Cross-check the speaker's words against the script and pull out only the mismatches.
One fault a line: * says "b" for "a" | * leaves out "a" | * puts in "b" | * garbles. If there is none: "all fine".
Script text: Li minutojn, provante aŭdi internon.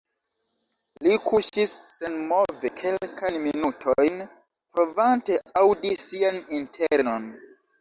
* puts in "kuŝis senmove kelkajn"
* puts in "sian"